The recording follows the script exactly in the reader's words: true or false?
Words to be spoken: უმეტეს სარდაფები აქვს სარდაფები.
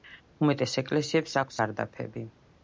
false